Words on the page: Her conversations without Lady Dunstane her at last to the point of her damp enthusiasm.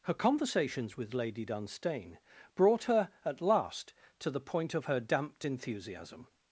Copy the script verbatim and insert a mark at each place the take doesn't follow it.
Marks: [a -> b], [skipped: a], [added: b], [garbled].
Her conversations [without -> with] Lady Dunstane [added: brought] her at last to the point of her [damp -> damped] enthusiasm.